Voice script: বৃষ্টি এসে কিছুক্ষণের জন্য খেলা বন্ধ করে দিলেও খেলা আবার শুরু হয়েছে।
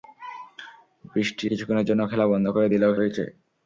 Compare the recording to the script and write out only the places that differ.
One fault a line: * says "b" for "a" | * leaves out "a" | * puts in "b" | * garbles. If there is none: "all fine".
* leaves out "এসে"
* leaves out "খেলা আবার শুরু"